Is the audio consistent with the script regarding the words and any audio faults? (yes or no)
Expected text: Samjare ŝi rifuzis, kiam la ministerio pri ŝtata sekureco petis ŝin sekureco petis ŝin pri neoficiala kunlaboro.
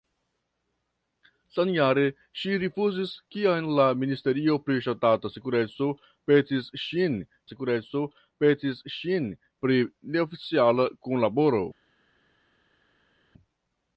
yes